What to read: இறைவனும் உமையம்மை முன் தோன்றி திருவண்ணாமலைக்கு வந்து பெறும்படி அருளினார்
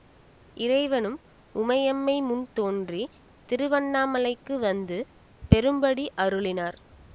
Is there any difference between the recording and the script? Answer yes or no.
no